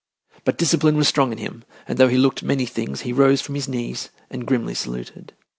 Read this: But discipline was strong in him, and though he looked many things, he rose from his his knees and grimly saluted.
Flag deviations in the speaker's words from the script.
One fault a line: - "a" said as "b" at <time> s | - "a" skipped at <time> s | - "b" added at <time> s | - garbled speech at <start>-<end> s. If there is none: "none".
- "his" skipped at 3.7 s